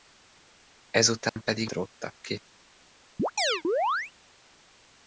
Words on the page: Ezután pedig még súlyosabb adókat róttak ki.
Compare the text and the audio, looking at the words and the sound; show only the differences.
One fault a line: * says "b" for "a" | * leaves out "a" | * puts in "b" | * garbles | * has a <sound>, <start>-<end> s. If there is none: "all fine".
* has a dropout, 1.3-1.4 s
* leaves out "még súlyosabb adókat"
* has a chirp, 3.2-4.1 s